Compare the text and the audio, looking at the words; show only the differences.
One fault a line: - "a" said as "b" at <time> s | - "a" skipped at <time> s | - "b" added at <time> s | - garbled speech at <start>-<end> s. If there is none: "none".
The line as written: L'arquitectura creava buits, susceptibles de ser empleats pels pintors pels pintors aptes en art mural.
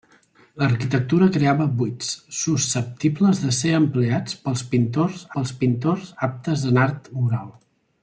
none